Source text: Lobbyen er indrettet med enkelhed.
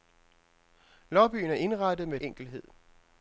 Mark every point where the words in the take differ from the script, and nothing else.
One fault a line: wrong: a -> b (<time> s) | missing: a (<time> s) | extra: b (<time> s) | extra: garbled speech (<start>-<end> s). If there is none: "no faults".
no faults